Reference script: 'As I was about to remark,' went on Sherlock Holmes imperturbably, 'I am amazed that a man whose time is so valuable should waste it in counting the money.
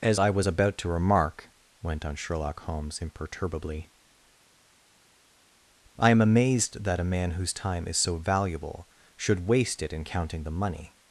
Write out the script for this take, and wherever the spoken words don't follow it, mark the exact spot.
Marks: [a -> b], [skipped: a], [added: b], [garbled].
'As I was about to remark,' went on Sherlock Holmes imperturbably, 'I am amazed that a man whose time is so valuable should waste it in counting the money.